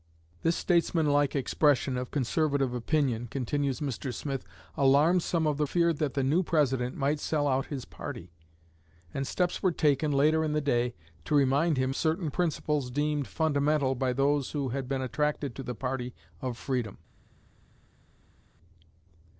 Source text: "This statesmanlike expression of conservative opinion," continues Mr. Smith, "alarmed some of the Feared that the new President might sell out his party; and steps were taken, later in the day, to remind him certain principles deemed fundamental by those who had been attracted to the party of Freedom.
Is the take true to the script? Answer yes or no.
yes